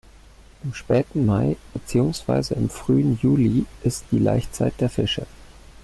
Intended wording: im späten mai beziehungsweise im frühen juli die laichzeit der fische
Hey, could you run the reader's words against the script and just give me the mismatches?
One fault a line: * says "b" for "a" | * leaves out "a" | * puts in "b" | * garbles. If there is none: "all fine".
* puts in "ist"